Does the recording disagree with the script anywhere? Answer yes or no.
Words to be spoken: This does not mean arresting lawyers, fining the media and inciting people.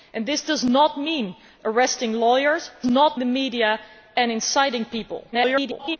yes